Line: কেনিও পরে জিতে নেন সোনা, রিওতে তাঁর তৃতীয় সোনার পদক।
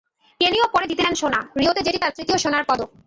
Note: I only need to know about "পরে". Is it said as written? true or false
true